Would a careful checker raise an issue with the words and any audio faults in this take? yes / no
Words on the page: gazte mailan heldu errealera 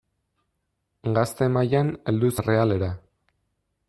no